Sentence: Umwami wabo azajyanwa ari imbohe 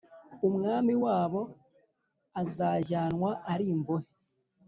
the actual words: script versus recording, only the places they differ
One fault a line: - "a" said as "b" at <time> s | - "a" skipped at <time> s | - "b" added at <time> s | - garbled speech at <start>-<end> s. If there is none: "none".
none